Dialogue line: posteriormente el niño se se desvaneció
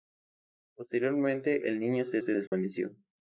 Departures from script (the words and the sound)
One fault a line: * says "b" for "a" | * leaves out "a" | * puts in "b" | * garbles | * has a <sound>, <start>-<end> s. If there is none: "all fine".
* has a dropout, 2.5-2.5 s